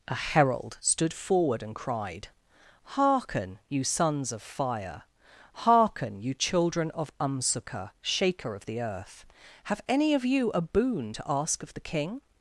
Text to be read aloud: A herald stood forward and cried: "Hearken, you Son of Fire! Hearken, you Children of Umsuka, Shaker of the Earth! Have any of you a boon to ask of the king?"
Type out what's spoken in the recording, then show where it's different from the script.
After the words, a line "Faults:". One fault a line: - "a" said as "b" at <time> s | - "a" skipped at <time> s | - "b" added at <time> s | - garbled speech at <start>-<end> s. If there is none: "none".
A herald stood forward and cried: "Hearken, you Sons of Fire! Hearken, you Children of Umsuka, Shaker of the Earth! Have any of you a boon to ask of the king?"
Faults:
- "Son" said as "Sons" at 3.8 s